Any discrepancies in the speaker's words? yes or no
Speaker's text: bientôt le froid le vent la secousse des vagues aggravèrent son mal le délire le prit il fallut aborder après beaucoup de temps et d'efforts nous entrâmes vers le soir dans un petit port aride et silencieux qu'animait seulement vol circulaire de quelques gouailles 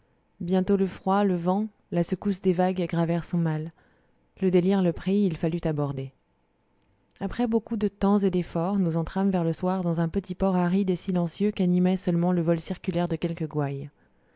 yes